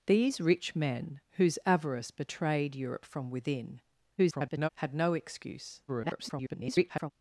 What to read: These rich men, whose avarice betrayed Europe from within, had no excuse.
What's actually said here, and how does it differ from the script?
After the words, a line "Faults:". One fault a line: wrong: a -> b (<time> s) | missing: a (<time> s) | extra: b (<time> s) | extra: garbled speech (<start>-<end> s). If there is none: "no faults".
These rich men, whose avarice betrayed Europe from within, [garbled] had no excuse. [garbled]
Faults:
extra: garbled speech (4.2-4.7 s)
extra: garbled speech (5.9-7.1 s)